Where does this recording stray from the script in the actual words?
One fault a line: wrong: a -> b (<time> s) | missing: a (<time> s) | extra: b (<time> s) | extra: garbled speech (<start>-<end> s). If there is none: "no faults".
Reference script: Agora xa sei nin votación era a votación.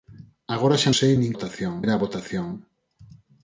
no faults